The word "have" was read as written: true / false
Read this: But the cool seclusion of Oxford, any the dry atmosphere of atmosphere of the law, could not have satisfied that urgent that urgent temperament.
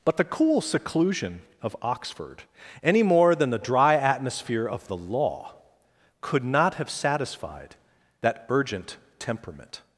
true